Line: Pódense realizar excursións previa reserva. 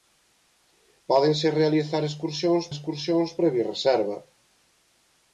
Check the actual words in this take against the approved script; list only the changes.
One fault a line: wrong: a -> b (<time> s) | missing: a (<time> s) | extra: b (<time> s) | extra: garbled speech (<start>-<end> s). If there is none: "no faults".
extra: excursións (2.7 s)